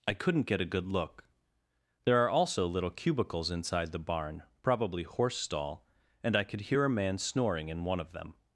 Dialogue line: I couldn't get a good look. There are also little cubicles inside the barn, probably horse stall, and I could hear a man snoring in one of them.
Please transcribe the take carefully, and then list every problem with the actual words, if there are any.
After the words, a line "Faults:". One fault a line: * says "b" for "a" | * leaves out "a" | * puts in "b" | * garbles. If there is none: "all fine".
I couldn't get a good look. There are also little cubicles inside the barn, probably horse stall, and I could hear a man snoring in one of them.
Faults:
all fine